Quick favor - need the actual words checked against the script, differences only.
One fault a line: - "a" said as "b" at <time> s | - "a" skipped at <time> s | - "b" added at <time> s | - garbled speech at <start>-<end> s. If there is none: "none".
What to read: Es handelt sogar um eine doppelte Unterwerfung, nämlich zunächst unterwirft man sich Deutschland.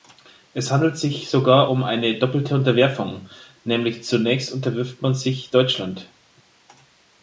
- "sich" added at 1.0 s